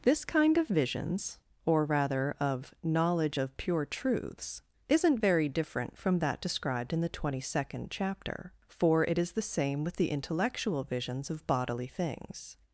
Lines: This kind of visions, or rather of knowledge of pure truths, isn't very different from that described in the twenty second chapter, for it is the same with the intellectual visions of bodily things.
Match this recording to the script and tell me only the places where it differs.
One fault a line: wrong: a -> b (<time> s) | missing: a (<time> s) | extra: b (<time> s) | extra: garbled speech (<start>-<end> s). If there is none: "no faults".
no faults